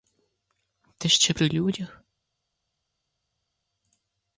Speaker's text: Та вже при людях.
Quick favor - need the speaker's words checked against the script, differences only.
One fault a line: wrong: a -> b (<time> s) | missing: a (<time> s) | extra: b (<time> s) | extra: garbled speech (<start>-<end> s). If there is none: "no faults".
wrong: вже -> ще (1.1 s)